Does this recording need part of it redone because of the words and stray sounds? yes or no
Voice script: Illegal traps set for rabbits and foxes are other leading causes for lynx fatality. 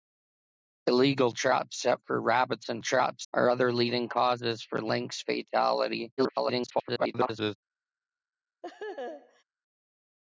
yes